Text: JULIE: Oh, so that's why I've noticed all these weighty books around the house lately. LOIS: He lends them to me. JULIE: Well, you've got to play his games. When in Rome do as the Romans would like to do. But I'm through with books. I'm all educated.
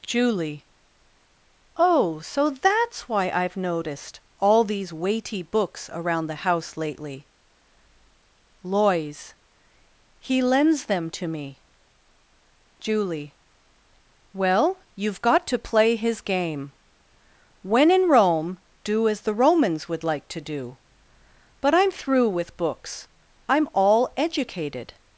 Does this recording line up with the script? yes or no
no